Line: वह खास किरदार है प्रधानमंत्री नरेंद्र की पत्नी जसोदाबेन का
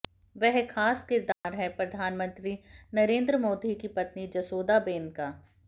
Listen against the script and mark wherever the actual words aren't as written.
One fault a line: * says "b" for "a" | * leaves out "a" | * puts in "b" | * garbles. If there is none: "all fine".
* puts in "मोदी"